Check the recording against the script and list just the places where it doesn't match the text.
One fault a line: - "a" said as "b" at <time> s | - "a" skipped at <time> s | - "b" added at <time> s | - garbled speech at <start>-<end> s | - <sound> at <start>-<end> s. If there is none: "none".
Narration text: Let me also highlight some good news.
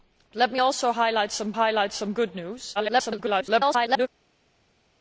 - "highlight some" added at 1.5 s
- garbled speech at 2.7-4.1 s